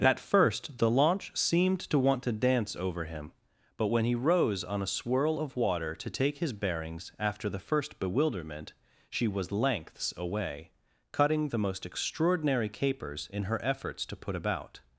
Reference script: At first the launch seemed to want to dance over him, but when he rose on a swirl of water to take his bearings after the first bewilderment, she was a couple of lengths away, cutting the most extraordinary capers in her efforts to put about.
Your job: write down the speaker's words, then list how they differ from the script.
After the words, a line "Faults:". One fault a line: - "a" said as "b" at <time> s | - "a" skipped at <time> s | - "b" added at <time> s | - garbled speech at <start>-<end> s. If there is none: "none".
At first the launch seemed to want to dance over him, but when he rose on a swirl of water to take his bearings after the first bewilderment, she was lengths away, cutting the most extraordinary capers in her efforts to put about.
Faults:
- "a couple of" skipped at 9.5 s